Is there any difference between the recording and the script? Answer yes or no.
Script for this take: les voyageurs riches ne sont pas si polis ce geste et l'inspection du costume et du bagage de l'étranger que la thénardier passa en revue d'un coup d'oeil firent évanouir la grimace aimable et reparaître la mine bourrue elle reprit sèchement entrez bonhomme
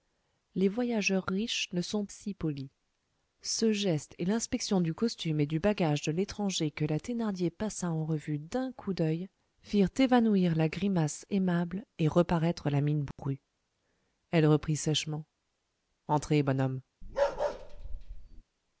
yes